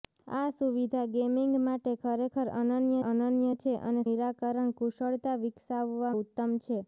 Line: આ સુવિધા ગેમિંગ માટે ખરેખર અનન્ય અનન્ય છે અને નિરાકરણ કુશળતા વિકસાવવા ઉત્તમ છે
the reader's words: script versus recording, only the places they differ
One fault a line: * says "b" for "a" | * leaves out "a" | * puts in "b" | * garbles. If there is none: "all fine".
all fine